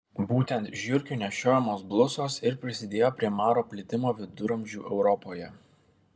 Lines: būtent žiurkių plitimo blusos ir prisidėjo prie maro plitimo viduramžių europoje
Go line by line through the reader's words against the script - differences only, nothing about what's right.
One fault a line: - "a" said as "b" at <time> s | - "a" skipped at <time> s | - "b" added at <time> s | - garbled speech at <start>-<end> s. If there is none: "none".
- "plitimo" said as "nešiojamos" at 1.2 s